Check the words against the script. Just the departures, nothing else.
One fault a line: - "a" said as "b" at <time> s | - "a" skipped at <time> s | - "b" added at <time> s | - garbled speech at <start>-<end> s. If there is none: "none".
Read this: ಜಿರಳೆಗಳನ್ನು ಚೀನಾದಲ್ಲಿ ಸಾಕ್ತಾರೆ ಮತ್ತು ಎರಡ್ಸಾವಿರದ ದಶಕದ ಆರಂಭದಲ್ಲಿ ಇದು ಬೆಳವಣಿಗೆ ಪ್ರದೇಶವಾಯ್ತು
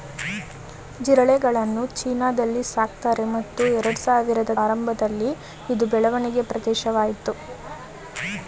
- "ದಶಕದ" skipped at 4.5 s